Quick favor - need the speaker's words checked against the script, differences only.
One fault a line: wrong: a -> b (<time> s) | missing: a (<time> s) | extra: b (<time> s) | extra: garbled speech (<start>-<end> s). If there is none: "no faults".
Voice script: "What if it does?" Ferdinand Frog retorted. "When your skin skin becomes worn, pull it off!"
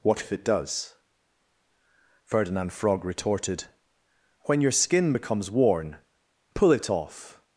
missing: skin (5.1 s)